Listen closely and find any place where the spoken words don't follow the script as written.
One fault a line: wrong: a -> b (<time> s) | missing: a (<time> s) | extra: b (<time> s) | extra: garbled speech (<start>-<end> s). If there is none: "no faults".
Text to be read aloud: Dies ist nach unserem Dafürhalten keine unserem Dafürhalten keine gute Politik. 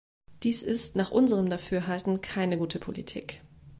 missing: unserem Dafürhalten keine (2.6 s)